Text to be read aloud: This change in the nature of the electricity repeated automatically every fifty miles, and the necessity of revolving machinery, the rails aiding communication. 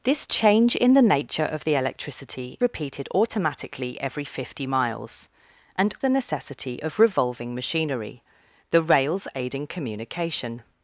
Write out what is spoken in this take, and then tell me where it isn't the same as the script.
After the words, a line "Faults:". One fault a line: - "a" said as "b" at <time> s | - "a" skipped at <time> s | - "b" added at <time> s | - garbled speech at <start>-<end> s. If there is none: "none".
This change in the nature of the electricity repeated automatically every fifty miles, and the necessity of revolving machinery, the rails aiding communication.
Faults:
none